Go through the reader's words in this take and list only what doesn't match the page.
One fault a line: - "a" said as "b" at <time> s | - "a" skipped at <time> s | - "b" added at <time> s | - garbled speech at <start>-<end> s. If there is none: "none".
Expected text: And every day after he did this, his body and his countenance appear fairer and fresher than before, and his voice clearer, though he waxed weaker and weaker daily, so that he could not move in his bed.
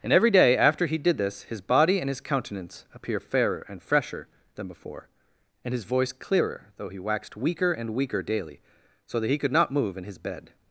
none